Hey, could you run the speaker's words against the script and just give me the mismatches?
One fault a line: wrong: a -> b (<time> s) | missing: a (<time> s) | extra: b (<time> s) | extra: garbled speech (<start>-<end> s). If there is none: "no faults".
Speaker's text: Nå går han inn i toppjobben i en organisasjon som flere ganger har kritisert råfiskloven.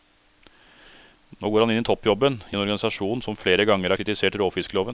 no faults